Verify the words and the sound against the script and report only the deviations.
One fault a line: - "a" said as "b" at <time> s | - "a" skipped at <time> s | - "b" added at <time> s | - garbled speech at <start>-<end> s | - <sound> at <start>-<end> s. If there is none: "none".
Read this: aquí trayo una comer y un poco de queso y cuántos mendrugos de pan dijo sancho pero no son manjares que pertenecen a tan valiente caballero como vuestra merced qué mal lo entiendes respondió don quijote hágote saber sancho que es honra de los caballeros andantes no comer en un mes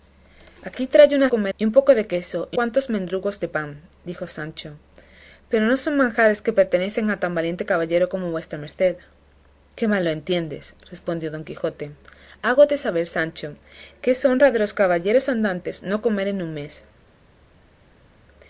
none